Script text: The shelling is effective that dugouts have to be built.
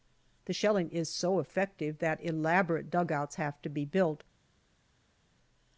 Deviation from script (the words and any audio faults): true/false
true